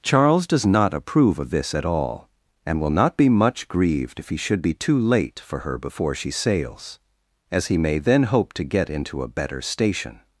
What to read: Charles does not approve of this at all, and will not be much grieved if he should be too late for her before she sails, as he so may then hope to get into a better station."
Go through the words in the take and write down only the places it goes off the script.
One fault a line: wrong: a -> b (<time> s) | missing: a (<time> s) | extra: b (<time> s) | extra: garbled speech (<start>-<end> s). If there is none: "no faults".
missing: so (7.8 s)